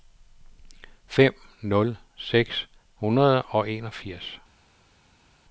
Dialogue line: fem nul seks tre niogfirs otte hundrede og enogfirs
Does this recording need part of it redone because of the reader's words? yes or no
yes